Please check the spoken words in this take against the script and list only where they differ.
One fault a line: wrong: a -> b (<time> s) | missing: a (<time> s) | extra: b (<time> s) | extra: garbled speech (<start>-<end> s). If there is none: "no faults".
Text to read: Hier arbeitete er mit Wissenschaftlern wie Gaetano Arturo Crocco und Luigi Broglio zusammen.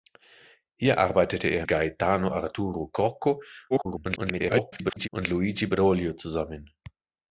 missing: mit Wissenschaftlern wie (1.7 s)
extra: garbled speech (3.7-5.1 s)